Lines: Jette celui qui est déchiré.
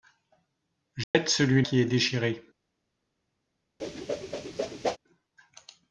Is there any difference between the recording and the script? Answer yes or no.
no